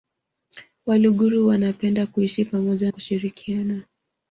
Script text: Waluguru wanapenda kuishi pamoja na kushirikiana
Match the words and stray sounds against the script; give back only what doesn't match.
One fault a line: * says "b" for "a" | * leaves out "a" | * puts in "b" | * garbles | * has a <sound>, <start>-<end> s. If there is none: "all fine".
* leaves out "na"